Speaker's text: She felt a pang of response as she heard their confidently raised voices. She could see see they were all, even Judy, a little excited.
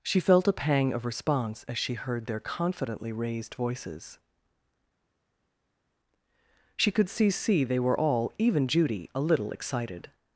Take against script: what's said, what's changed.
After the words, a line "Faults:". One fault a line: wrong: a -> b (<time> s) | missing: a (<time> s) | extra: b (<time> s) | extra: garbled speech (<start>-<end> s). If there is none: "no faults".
She felt a pang of response as she heard their confidently raised voices. She could see see they were all, even Judy, a little excited.
Faults:
no faults